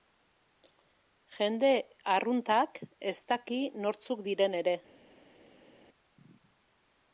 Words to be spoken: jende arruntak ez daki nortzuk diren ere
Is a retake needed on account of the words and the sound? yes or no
no